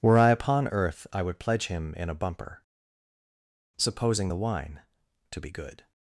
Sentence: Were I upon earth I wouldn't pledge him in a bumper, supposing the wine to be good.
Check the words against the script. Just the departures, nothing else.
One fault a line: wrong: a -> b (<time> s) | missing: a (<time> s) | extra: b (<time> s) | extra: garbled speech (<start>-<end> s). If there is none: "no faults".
wrong: wouldn't -> would (1.2 s)